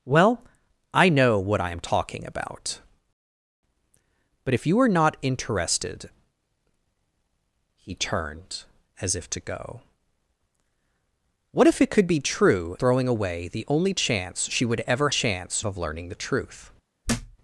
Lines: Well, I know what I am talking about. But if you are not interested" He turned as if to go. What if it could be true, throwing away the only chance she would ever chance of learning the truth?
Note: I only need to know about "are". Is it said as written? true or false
true